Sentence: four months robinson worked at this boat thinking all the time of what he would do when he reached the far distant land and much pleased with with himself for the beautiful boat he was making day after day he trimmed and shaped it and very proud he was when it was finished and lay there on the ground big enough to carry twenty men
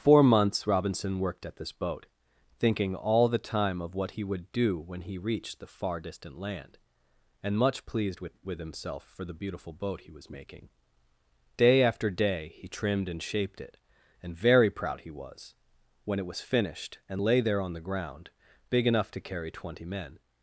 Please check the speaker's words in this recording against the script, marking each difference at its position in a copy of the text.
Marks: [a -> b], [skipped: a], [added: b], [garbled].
four months robinson worked at this boat thinking all the time of what he would do when he reached the far distant land and much pleased with with himself for the beautiful boat he was making day after day he trimmed and shaped it and very proud he was when it was finished and lay there on the ground big enough to carry twenty men